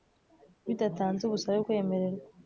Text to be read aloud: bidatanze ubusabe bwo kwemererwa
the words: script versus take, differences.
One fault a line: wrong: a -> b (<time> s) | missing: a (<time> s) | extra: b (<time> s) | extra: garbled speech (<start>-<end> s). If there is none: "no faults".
missing: bwo (1.6 s)